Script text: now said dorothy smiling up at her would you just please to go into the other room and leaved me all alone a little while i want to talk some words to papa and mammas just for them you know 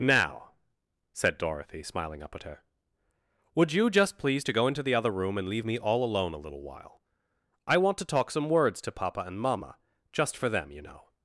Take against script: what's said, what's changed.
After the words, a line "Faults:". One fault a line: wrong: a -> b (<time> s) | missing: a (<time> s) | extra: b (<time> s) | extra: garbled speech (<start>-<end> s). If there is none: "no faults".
now said dorothy smiling up at her would you just please to go into the other room and leave me all alone a little while i want to talk some words to papa and mamma just for them you know
Faults:
wrong: leaved -> leave (5.5 s)
wrong: mammas -> mamma (9.4 s)